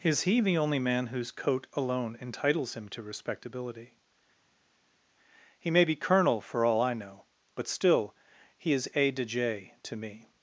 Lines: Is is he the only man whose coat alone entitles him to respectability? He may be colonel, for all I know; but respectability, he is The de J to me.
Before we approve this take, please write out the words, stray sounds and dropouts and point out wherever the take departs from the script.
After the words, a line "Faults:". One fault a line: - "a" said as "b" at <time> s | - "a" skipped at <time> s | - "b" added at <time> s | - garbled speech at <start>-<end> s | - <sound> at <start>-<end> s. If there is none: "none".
Is he the only man whose coat alone entitles him to respectability? He may be colonel, for all I know; but still, he is A de J to me.
Faults:
- "is" skipped at 0.2 s
- "respectability" said as "still" at 7.7 s
- "The" said as "A" at 8.9 s